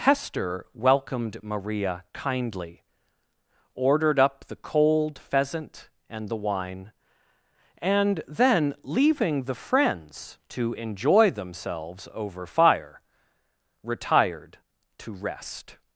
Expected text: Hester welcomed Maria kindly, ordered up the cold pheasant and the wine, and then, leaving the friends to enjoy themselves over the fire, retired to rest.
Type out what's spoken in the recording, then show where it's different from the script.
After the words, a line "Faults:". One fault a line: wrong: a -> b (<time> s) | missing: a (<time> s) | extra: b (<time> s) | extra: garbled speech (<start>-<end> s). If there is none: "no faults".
Hester welcomed Maria kindly, ordered up the cold pheasant and the wine, and then, leaving the friends to enjoy themselves over fire, retired to rest.
Faults:
missing: the (12.5 s)